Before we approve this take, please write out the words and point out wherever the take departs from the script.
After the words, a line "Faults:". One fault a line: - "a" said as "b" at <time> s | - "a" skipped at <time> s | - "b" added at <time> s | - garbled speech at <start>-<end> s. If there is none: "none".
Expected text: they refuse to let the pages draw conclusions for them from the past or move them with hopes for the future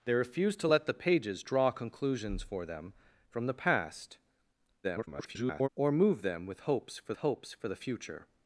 they refuse to let the pages draw conclusions for them from the past [garbled] or move them with hopes for hopes for the future
Faults:
- garbled speech at 4.8-5.7 s
- "hopes for" added at 7.2 s